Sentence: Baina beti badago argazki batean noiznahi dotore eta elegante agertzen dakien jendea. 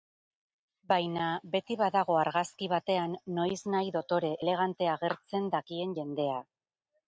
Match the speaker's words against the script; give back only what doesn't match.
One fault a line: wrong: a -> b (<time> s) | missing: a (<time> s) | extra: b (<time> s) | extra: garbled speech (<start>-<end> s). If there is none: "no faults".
missing: eta (4.3 s)